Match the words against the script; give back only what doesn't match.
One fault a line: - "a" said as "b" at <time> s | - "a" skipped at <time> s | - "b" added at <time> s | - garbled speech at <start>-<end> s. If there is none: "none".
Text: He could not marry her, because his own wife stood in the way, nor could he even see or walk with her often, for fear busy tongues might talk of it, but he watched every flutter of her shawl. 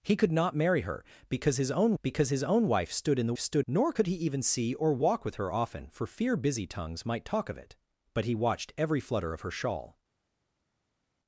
- "because his own" added at 2.0 s
- "way" said as "stood" at 3.4 s